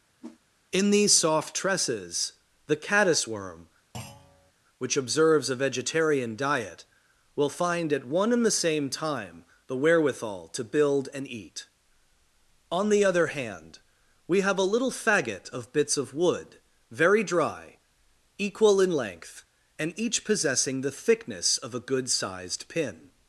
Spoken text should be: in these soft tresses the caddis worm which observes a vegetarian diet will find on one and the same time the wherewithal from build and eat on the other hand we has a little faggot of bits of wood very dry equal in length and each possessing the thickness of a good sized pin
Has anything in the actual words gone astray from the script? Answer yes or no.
yes